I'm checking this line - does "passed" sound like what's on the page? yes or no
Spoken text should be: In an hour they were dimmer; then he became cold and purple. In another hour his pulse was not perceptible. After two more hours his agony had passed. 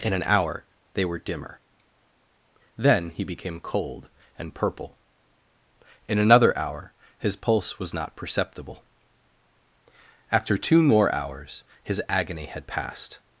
yes